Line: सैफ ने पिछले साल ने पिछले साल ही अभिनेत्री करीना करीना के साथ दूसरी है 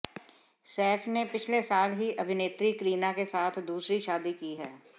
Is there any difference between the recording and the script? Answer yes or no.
yes